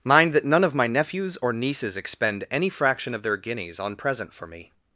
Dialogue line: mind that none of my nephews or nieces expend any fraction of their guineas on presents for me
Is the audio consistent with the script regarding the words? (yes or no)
no